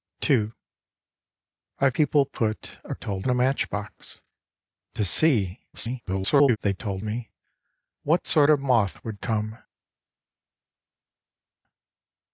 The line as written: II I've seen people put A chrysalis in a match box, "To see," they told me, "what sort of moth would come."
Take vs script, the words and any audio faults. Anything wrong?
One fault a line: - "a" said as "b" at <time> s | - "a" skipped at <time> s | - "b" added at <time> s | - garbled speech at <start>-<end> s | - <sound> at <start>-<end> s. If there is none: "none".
- "seen" skipped at 1.9 s
- "chrysalis" said as "told" at 2.9 s
- garbled speech at 5.7-6.6 s